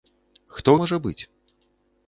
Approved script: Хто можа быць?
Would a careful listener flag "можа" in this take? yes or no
no